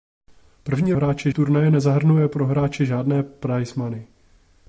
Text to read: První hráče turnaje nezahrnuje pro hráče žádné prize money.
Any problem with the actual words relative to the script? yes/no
no